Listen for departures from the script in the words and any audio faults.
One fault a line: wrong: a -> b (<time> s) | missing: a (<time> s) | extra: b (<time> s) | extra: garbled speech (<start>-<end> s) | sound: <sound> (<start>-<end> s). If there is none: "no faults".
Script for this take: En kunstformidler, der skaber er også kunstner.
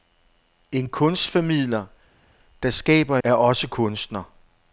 no faults